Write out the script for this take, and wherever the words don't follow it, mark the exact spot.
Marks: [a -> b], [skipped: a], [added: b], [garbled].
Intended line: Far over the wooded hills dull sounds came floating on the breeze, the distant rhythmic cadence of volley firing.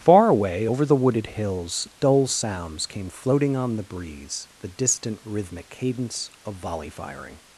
Far [added: away] over the wooded hills dull sounds came floating on the breeze, the distant rhythmic cadence of volley firing.